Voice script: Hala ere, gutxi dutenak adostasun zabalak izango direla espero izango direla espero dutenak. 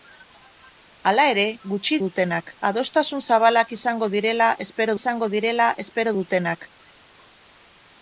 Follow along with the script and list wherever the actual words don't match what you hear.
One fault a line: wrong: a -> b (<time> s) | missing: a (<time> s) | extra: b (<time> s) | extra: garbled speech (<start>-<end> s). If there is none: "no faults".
no faults